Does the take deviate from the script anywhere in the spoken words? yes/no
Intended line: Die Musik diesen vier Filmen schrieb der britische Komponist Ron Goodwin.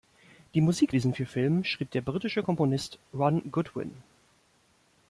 no